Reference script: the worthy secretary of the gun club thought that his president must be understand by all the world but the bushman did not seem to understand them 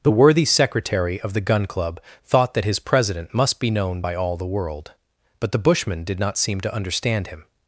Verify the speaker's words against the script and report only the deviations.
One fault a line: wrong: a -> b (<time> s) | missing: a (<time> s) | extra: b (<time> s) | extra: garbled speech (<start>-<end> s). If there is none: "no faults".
wrong: understand -> known (3.7 s)
wrong: them -> him (7.3 s)